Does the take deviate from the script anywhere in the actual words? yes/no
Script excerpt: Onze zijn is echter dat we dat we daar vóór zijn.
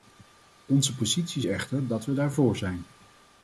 yes